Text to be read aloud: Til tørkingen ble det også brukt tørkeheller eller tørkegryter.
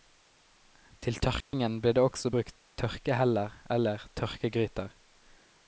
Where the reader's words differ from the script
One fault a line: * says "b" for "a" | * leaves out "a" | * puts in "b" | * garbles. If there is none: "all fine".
all fine